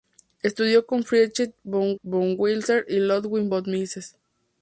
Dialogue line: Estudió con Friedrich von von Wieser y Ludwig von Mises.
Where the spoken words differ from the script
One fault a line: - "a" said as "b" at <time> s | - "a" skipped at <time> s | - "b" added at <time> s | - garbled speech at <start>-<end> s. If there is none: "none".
none